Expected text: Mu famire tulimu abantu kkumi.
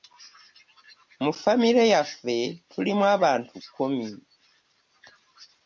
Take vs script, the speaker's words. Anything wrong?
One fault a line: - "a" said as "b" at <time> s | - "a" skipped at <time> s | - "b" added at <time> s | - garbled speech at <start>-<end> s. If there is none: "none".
- "yaffe" added at 1.9 s